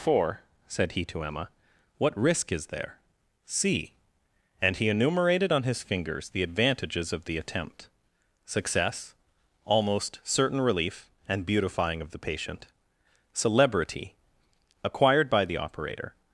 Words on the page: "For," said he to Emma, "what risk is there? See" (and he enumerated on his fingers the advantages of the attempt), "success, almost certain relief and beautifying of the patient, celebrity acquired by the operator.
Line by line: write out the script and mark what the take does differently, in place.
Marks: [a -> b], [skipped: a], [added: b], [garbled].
"For," said he to Emma, "what risk is there? See" (and he enumerated on his fingers the advantages of the attempt), "success, almost certain relief and beautifying of the patient, celebrity acquired by the operator.